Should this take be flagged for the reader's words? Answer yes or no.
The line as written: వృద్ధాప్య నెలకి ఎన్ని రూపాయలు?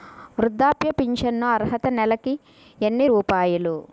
yes